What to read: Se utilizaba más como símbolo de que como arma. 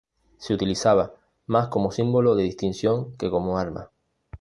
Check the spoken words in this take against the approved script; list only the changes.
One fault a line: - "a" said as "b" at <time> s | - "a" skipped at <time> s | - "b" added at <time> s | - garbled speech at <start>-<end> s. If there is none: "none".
- "distinción" added at 2.4 s